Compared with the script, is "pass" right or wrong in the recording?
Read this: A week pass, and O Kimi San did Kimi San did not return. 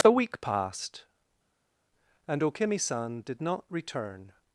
wrong